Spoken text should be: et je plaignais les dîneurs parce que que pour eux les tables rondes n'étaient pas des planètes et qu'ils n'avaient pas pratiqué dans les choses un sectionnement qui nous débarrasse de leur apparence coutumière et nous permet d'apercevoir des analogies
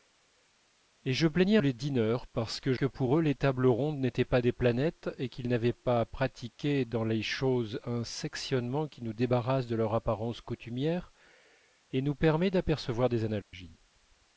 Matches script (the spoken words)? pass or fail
pass